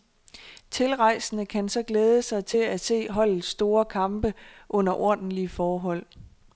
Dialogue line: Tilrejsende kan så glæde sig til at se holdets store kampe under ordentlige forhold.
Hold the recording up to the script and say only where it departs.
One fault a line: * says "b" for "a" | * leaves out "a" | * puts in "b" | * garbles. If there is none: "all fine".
all fine